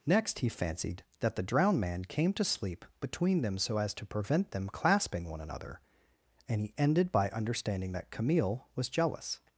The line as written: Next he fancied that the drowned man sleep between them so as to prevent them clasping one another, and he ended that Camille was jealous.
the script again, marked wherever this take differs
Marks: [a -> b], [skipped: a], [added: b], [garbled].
Next he fancied that the drowned man [added: came to] sleep between them so as to prevent them clasping one another, and he ended [added: by understanding] that Camille was jealous.